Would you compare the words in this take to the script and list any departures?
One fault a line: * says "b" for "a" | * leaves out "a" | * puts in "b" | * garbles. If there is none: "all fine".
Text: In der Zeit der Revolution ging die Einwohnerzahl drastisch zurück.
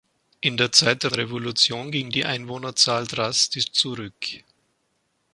all fine